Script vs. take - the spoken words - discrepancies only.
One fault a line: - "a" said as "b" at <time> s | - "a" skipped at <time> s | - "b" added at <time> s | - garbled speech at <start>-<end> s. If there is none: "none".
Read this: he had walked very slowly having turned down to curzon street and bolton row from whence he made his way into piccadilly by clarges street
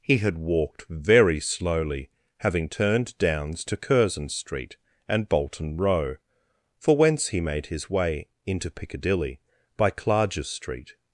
- "down" said as "downs" at 3.2 s
- "from" said as "for" at 6.8 s